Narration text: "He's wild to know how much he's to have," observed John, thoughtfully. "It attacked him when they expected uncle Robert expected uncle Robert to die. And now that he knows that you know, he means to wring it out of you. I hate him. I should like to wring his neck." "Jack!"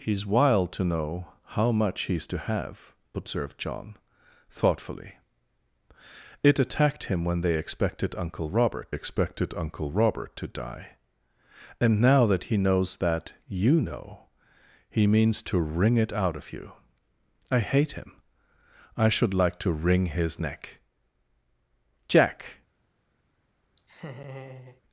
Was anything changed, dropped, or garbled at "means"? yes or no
no